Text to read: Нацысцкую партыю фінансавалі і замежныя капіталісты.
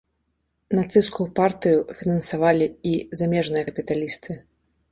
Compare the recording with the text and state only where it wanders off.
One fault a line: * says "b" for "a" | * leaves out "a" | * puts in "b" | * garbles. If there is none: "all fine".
all fine